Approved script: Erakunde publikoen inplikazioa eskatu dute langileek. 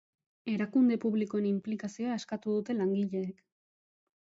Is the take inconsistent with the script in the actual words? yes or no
no